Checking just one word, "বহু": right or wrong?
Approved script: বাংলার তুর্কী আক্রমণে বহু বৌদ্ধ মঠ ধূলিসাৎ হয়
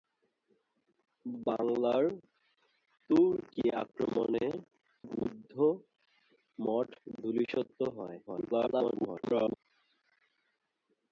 wrong